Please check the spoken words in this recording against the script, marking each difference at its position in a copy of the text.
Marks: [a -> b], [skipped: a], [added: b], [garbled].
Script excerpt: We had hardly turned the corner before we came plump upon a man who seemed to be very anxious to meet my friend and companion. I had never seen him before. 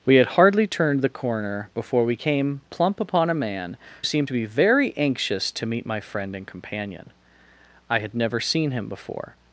We had hardly turned the corner before we came plump upon a man [skipped: who] seemed to be very anxious to meet my friend and companion. I had never seen him before.